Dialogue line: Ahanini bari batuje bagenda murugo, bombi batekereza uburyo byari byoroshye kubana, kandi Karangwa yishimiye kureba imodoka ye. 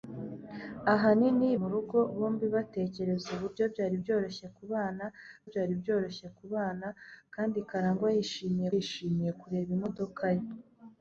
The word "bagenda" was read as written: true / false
false